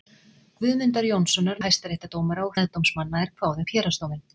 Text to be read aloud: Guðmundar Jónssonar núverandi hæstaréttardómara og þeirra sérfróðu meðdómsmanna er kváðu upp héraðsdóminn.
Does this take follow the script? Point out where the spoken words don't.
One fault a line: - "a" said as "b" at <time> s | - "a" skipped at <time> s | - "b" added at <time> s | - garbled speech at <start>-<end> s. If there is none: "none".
- "núverandi" skipped at 1.6 s
- "þeirra sérfróðu" skipped at 2.6 s